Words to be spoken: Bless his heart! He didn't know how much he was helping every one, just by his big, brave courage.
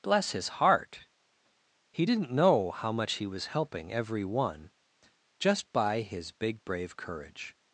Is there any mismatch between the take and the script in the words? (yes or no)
no